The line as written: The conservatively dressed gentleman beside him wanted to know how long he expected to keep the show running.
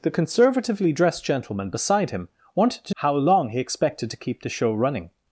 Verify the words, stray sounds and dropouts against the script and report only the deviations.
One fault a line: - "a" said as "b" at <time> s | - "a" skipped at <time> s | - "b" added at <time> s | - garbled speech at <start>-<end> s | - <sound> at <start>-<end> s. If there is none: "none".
- "know" skipped at 3.0 s